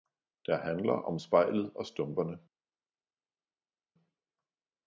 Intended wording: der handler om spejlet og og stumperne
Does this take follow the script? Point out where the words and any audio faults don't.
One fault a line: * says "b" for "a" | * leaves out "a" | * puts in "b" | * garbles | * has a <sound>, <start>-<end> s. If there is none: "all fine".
* leaves out "og"